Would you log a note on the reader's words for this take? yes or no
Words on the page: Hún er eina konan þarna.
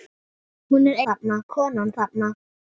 yes